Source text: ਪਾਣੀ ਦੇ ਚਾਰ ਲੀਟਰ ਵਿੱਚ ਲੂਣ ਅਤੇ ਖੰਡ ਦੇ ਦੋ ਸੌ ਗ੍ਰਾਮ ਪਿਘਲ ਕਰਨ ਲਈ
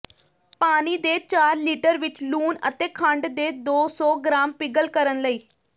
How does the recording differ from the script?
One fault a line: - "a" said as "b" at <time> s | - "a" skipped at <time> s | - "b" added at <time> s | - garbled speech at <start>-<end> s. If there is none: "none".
none